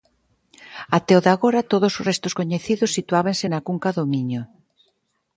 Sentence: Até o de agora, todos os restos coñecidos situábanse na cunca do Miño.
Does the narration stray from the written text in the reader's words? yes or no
no